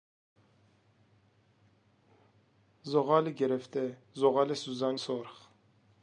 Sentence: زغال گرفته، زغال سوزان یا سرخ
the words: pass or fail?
fail